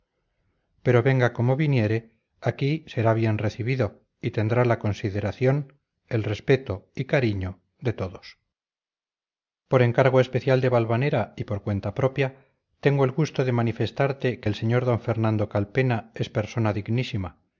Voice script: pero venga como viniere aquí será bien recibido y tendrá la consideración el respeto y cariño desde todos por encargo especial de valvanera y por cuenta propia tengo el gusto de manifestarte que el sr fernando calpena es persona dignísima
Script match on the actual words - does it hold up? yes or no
no